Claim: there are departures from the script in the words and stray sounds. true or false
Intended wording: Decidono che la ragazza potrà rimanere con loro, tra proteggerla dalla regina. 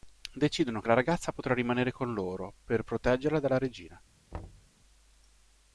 true